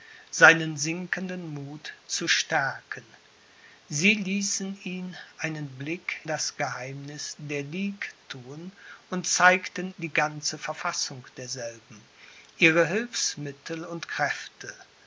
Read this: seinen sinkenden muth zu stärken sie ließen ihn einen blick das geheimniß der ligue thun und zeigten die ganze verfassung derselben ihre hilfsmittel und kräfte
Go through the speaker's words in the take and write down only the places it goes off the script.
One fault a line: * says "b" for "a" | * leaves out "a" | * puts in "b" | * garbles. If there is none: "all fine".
all fine